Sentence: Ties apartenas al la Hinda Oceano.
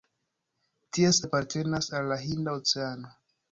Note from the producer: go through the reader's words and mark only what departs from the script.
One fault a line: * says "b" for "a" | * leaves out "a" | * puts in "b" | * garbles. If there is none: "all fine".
all fine